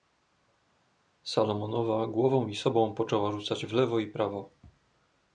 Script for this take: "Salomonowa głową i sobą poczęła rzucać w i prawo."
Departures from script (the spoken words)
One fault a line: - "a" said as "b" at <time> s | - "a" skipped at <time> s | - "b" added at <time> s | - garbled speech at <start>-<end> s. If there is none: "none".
- "lewo" added at 3.7 s